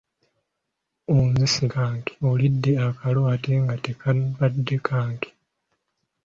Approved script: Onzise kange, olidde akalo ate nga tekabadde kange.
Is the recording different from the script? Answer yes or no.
no